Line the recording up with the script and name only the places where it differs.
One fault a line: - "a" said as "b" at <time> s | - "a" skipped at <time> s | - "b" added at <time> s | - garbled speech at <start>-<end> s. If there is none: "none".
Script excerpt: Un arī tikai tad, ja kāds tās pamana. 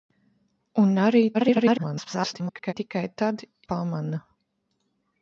- garbled speech at 1.3-2.7 s
- "ja kāds tās" skipped at 3.4 s